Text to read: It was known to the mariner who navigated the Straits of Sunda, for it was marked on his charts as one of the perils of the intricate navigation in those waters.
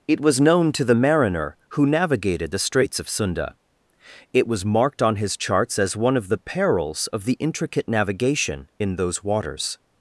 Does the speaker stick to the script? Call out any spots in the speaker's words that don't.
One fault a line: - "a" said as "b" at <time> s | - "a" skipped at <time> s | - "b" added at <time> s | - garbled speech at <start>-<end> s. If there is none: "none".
- "for" skipped at 3.5 s